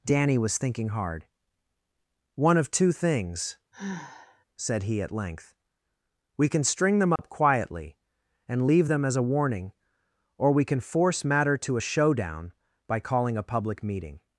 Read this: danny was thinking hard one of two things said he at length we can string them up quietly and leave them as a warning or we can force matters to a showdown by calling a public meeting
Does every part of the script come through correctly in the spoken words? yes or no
no